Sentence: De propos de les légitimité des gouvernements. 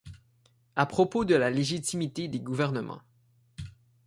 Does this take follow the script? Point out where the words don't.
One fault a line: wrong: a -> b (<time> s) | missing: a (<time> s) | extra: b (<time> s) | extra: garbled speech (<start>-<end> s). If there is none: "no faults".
wrong: De -> À (0.8 s)
wrong: les -> la (1.3 s)